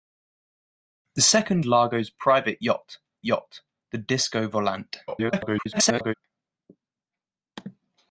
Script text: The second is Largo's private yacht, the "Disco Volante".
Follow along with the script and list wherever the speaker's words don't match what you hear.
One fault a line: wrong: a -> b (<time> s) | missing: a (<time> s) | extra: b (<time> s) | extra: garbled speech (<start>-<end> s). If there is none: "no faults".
missing: is (1.7 s)
extra: yacht (3.2 s)
extra: garbled speech (5.1-6.1 s)